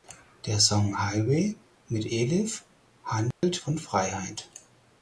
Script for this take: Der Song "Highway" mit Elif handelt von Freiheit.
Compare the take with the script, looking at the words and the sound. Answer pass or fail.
fail